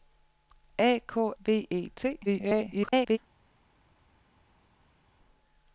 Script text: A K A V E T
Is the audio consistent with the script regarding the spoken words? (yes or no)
no